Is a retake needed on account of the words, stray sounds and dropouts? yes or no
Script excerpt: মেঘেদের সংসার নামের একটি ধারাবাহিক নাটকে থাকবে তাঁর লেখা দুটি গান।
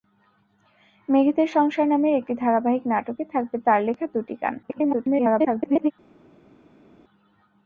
yes